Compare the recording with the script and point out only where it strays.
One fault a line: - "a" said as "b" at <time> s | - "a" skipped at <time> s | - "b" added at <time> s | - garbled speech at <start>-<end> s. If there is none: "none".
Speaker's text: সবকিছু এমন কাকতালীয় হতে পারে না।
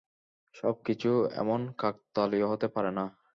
none